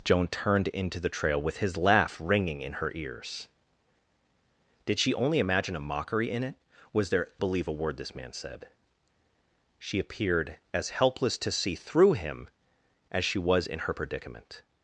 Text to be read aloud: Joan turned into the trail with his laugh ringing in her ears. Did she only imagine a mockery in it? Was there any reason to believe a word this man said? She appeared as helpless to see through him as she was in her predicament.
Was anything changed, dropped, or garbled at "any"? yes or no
yes